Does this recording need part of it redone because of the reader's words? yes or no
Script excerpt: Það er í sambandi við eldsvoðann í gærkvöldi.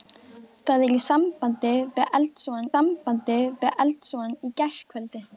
yes